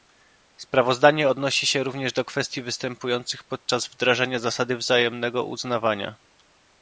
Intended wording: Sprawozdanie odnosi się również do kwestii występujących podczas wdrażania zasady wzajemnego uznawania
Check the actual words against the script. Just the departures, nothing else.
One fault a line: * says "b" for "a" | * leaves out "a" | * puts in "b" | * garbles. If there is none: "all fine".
all fine